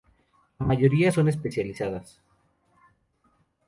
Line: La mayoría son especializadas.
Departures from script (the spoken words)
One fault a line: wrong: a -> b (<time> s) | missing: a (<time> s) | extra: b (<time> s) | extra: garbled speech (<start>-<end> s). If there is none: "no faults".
no faults